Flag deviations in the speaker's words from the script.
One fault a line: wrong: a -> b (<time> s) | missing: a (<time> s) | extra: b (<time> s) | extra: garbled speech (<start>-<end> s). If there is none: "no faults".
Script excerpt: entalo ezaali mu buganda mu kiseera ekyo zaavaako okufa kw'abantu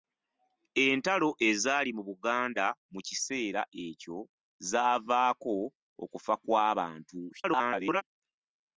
extra: garbled speech (7.3-8.0 s)